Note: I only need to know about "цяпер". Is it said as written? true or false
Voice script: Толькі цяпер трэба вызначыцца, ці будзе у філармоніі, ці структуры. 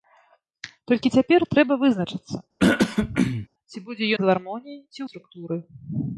true